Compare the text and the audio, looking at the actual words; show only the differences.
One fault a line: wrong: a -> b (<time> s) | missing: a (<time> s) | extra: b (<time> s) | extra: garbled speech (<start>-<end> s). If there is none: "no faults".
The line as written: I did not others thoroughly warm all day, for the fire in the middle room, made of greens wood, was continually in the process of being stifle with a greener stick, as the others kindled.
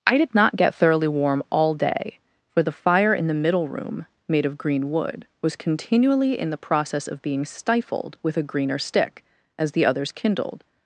wrong: others -> get (0.6 s)
wrong: greens -> green (4.6 s)
wrong: stifle -> stifled (7.5 s)